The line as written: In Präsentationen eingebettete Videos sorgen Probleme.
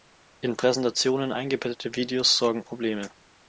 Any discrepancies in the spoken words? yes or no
no